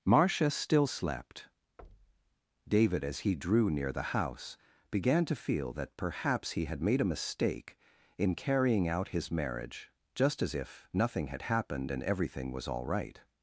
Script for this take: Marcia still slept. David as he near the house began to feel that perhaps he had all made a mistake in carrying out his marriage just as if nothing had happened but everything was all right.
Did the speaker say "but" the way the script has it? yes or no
no